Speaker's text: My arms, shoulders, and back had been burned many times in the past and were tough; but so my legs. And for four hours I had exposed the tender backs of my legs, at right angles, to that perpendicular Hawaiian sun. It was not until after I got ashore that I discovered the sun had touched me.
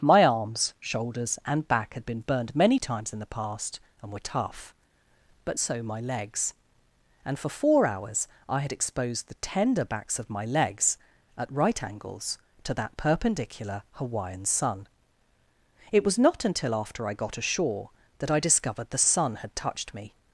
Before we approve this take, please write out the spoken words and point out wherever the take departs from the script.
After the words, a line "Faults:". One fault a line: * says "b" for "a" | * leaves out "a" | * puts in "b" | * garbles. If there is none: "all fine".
My arms, shoulders, and back had been burned many times in the past and were tough; but so my legs. And for four hours I had exposed the tender backs of my legs, at right angles, to that perpendicular Hawaiian sun. It was not until after I got ashore that I discovered the sun had touched me.
Faults:
all fine